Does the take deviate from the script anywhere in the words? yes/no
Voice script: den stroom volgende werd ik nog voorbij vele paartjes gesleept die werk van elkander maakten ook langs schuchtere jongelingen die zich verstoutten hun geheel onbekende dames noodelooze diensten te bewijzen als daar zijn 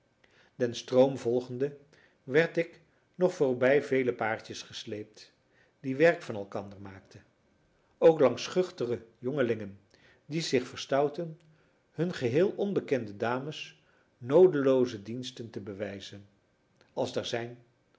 no